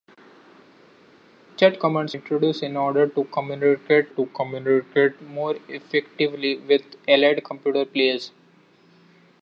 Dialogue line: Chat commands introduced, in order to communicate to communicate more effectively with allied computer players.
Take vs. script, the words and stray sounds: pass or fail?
pass